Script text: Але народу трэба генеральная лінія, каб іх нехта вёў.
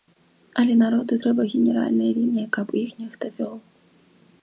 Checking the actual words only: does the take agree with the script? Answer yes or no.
yes